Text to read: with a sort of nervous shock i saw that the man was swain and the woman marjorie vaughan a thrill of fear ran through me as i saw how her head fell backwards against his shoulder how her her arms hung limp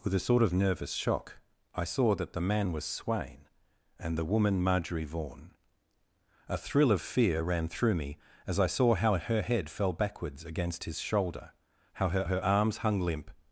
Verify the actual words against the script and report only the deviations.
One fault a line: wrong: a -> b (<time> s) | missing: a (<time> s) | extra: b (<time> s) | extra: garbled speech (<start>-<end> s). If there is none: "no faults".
no faults